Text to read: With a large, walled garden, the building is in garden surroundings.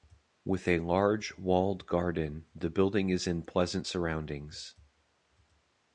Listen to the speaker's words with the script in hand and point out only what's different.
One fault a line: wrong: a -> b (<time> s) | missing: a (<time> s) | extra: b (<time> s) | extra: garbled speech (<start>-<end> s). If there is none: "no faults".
wrong: garden -> pleasant (3.4 s)